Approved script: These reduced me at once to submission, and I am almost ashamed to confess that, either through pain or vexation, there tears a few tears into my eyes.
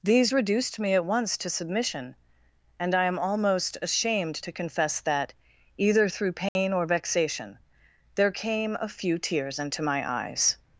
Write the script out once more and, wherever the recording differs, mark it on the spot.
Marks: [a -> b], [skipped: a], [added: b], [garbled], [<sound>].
These reduced me at once to submission, and I am almost ashamed to confess that, either through pain [dropout] or vexation, there [tears -> came] a few tears into my eyes.